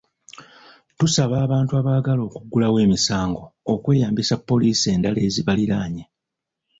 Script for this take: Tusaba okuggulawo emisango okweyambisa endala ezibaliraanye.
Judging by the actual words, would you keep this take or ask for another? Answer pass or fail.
fail